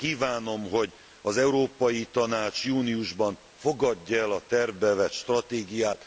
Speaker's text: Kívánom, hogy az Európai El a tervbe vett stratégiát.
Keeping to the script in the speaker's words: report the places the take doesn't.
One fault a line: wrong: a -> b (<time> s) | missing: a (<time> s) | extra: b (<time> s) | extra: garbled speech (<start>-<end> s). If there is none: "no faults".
extra: Tanács júniusban fogadja (2.1 s)